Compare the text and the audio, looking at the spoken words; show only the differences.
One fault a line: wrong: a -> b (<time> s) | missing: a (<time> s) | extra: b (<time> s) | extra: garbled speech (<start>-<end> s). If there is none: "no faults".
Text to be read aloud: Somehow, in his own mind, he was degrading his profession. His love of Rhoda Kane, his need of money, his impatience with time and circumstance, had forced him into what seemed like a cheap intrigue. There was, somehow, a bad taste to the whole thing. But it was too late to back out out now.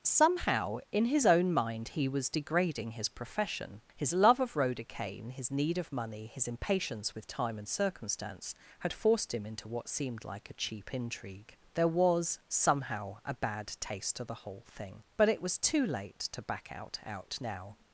no faults